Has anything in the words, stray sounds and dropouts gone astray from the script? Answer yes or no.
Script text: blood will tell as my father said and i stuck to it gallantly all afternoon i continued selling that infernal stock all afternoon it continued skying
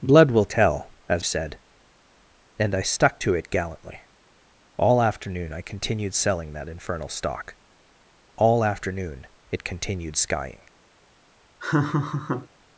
yes